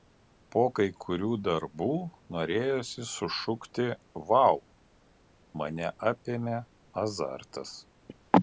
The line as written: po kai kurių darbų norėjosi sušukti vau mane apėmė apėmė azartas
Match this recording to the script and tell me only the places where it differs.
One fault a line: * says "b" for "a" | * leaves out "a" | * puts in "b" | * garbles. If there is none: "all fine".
* leaves out "apėmė"